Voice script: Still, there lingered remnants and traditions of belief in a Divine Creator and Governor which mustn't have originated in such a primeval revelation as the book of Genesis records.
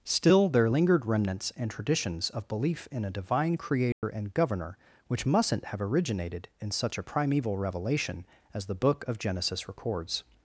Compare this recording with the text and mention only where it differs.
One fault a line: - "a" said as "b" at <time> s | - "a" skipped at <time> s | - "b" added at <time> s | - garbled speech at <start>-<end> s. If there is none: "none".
none